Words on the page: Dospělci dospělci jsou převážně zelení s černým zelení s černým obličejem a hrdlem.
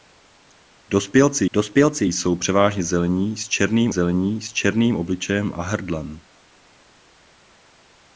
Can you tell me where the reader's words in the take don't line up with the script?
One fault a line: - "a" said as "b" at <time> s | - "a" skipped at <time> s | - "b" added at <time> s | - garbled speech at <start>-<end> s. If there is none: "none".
none